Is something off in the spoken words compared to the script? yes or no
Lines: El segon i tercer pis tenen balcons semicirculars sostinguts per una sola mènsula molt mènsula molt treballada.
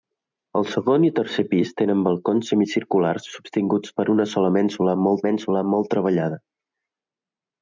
no